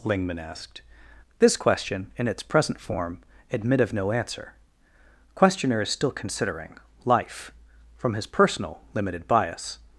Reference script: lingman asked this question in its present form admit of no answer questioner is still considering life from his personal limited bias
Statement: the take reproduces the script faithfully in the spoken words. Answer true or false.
true